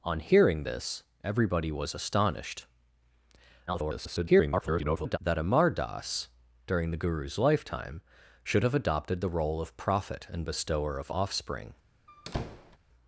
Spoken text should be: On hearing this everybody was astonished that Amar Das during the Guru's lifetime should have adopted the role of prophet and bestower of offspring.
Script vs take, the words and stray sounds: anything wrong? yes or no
yes